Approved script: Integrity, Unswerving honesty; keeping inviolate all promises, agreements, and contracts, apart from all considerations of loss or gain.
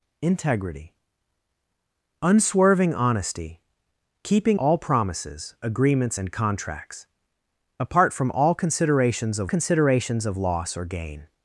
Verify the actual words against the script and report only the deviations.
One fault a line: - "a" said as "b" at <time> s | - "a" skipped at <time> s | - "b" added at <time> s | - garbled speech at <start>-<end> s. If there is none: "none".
- "inviolate" skipped at 4.6 s
- "considerations of" added at 9.5 s